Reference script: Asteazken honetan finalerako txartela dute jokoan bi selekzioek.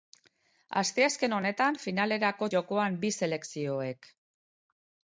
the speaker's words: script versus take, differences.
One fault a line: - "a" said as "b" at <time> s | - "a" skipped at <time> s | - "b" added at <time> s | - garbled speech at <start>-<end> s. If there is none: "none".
- "txartela dute" skipped at 2.5 s